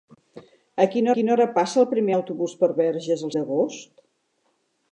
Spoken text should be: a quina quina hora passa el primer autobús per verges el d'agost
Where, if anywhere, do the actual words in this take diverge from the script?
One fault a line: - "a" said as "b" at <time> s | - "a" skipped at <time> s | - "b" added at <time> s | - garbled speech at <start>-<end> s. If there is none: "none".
none